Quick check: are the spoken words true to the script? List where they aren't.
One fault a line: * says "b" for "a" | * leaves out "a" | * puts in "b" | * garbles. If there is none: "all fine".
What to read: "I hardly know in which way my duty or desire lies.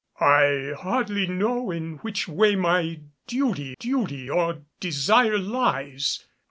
* puts in "duty"